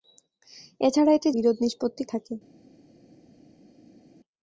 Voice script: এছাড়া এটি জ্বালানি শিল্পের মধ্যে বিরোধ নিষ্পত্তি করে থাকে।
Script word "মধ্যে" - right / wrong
wrong